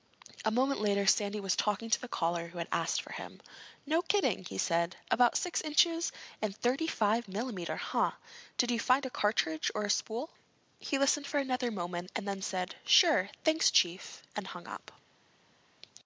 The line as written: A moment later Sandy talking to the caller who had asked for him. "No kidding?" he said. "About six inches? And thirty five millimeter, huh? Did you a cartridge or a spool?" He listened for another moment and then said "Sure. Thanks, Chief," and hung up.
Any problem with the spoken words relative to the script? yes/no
yes